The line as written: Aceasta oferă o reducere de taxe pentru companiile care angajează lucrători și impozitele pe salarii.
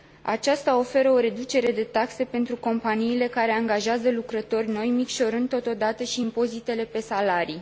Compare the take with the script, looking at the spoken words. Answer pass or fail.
fail